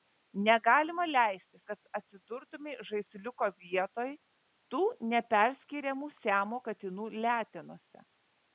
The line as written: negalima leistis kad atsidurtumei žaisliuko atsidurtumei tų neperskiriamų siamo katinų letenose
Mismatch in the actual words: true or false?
true